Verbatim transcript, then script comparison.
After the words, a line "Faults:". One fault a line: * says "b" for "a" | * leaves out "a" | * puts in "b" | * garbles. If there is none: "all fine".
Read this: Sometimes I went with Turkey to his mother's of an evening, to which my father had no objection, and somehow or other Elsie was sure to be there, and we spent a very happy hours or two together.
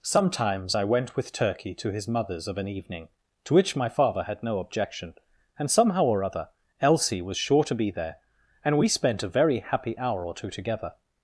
Sometimes I went with Turkey to his mother's of an evening, to which my father had no objection, and somehow or other Elsie was sure to be there, and we spent a very happy hour or two together.
Faults:
* says "hour" for "hours"